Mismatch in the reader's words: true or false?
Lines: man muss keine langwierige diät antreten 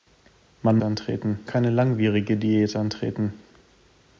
true